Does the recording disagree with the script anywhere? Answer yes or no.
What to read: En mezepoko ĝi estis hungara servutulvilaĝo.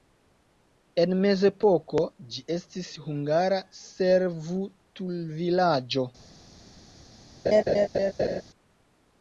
no